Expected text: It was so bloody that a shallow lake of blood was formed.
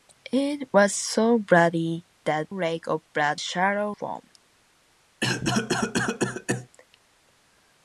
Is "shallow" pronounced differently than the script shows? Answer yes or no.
yes